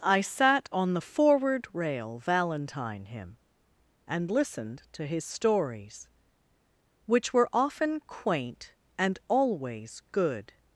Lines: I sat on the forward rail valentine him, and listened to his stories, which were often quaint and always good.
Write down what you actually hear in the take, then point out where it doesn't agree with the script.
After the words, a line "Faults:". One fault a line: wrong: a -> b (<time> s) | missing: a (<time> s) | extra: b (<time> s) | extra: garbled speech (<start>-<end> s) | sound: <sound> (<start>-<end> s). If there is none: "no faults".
I sat on the forward rail valentine him, and listened to his stories, which were often quaint and always good.
Faults:
no faults